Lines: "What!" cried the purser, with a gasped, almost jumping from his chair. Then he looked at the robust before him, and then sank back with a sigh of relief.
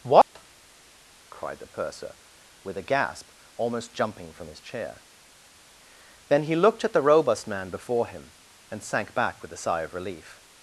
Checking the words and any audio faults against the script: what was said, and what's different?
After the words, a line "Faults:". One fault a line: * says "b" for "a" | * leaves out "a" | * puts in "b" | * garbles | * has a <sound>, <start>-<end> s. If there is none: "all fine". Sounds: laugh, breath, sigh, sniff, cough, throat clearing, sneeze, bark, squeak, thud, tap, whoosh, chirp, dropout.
"What!" cried the purser, with a gasp, almost jumping from his chair. Then he looked at the robust man before him, and sank back with a sigh of relief.
Faults:
* has a dropout, 0.2-0.4 s
* says "gasp" for "gasped"
* puts in "man"
* leaves out "then"